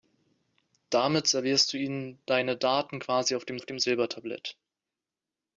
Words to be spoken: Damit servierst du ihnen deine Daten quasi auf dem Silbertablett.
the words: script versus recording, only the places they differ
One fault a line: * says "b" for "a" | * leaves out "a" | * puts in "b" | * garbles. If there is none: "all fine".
* puts in "auf dem"